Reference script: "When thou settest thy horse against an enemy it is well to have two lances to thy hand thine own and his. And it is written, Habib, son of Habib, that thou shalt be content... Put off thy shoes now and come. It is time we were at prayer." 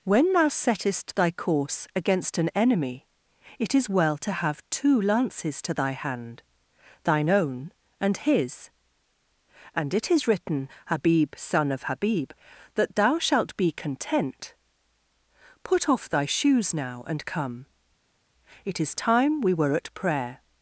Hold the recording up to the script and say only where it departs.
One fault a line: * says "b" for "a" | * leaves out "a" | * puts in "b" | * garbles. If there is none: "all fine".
* says "course" for "horse"